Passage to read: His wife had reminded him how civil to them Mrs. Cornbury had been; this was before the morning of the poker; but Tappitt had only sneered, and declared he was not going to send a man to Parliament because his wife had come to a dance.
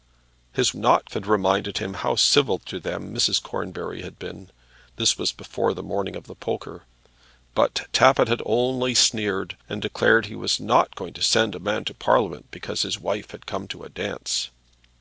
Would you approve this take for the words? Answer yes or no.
no